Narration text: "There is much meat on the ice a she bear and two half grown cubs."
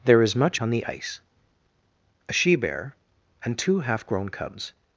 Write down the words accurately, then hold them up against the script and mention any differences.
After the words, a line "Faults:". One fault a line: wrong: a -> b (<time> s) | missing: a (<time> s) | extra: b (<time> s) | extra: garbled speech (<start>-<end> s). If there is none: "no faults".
"There is much on the ice a she bear and two half grown cubs."
Faults:
missing: meat (0.6 s)